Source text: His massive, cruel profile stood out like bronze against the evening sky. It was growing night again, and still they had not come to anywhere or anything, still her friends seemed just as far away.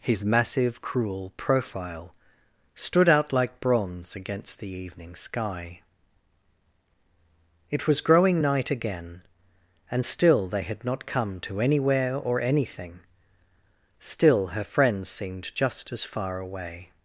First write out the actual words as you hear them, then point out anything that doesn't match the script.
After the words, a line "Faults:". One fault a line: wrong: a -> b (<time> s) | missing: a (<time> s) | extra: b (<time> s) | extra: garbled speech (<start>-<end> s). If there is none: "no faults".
His massive, cruel profile stood out like bronze against the evening sky. It was growing night again, and still they had not come to anywhere or anything, still her friends seemed just as far away.
Faults:
no faults